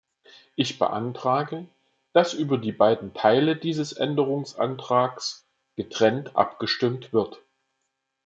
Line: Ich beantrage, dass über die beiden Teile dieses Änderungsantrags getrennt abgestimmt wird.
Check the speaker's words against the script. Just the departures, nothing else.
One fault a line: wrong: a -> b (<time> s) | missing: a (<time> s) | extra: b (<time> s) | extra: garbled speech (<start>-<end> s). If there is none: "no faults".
no faults